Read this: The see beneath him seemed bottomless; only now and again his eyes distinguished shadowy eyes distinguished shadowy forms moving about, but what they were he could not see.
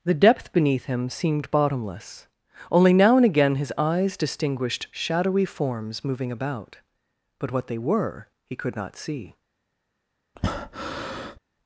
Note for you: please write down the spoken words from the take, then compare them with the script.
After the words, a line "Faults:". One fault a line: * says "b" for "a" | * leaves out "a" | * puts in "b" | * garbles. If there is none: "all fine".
The depth beneath him seemed bottomless; only now and again his eyes distinguished shadowy forms moving about, but what they were he could not see.
Faults:
* says "depth" for "see"
* leaves out "eyes distinguished shadowy"